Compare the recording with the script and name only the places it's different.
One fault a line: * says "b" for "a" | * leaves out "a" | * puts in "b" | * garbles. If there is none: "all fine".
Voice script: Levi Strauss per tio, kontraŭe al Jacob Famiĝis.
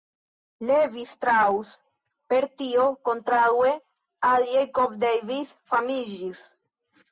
* puts in "Davis"